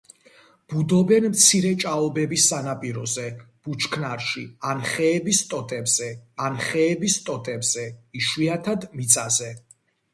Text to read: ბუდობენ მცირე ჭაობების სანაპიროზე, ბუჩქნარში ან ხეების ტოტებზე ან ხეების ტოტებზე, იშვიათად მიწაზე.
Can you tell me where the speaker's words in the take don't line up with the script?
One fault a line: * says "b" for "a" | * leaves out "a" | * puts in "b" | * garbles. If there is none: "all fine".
all fine